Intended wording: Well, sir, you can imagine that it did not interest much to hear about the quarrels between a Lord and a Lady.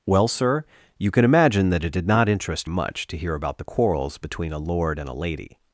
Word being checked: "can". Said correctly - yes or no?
yes